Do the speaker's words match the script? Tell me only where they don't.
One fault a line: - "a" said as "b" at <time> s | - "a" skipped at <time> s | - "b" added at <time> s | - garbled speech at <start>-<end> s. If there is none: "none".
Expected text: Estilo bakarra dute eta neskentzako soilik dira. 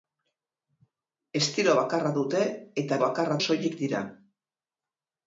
- "neskentzako" said as "bakarra" at 3.0 s